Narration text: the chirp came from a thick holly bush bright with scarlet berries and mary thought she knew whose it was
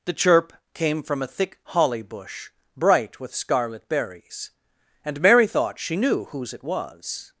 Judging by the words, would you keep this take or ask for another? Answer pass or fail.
pass